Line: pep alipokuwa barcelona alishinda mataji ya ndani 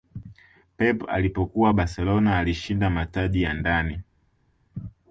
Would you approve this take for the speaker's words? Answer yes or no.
yes